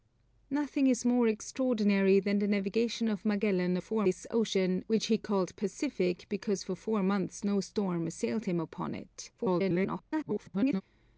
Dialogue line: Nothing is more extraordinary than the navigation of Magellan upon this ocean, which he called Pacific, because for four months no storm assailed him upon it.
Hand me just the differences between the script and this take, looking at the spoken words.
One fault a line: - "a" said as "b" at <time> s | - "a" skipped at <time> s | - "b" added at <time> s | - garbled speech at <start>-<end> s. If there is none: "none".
- "upon" said as "four" at 3.8 s
- garbled speech at 9.4-10.8 s